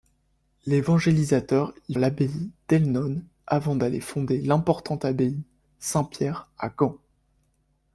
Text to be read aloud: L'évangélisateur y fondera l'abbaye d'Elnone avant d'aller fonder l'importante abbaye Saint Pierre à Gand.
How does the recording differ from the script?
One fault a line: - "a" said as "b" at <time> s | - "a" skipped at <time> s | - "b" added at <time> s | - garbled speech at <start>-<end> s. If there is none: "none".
- "fondera" skipped at 1.9 s